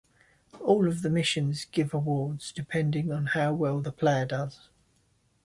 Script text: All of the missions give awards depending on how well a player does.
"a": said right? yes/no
no